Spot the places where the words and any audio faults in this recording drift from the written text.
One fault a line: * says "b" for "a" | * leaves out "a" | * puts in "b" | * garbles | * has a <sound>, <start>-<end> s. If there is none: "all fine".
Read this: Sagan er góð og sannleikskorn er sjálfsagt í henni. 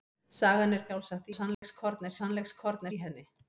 * says "sjálfsagt" for "góð"
* has a dropout, 1.5-1.6 s
* says "sannleikskorn" for "sjálfsagt"